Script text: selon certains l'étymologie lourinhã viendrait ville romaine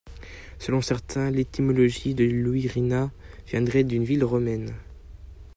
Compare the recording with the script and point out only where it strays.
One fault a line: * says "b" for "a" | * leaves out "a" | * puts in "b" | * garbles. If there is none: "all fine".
* puts in "de"
* puts in "d'une"